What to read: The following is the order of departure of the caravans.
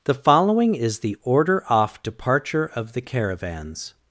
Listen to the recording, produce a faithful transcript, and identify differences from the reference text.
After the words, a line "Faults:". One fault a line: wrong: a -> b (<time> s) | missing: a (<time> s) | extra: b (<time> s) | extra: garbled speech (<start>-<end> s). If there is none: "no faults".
The following is the order off departure of the caravans.
Faults:
wrong: of -> off (1.7 s)